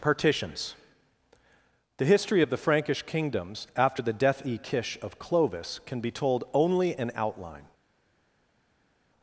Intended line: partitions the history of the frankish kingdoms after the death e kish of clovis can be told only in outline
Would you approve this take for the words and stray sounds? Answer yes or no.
yes